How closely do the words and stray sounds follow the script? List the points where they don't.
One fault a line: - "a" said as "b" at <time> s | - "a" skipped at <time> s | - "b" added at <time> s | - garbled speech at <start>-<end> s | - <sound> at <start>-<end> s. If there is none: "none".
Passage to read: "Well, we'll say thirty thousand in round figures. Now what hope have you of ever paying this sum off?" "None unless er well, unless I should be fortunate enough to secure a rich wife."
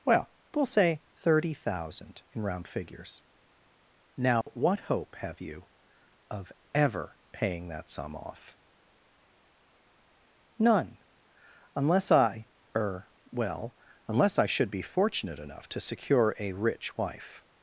- dropout at 4.4-4.5 s
- "this" said as "that" at 7.7 s
- "I" added at 12.1 s